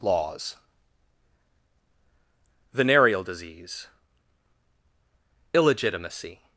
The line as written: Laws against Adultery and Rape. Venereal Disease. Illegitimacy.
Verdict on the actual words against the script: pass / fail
fail